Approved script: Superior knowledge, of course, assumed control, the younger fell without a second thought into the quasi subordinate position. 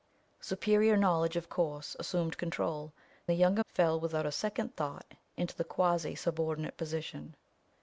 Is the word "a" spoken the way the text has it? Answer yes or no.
yes